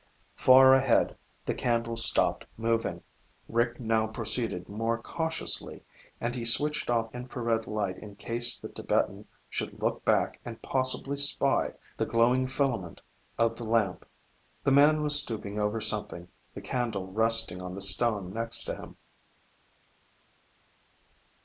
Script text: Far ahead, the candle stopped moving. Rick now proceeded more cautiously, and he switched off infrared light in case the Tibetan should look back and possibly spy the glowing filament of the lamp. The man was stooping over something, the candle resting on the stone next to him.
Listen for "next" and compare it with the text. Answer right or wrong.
right